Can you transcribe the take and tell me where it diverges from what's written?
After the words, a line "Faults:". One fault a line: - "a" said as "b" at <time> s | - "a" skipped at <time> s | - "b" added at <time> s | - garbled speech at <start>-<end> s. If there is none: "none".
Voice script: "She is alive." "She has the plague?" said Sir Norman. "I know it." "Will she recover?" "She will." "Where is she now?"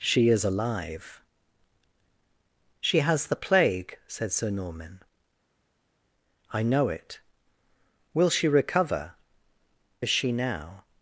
"She is alive." "She has the plague?" said Sir Norman. "I know it." "Will she recover?" "Is she now?"
Faults:
- "She will Where" skipped at 9.1 s